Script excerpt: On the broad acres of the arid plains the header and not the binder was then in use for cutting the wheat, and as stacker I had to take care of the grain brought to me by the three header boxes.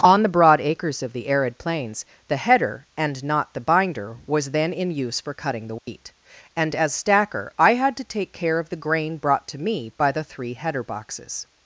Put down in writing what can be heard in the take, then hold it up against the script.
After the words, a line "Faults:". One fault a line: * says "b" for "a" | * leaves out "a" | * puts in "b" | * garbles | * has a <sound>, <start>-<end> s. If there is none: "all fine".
On the broad acres of the arid plains the header and not the binder was then in use for cutting the wheat, and as stacker I had to take care of the grain brought to me by the three header boxes.
Faults:
* has a dropout, 5.8-5.9 s